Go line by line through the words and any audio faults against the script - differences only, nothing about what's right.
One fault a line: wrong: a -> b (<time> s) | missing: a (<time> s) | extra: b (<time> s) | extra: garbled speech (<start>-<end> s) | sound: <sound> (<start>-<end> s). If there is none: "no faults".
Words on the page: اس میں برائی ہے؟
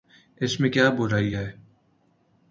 extra: کیا (0.7 s)